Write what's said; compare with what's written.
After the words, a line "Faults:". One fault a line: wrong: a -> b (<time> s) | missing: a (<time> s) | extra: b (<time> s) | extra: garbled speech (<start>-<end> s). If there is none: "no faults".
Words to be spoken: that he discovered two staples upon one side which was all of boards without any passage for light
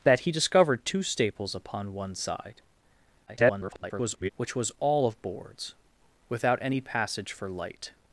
that he discovered two staples upon one side [garbled] which was all of boards without any passage for light
Faults:
extra: garbled speech (3.3-4.3 s)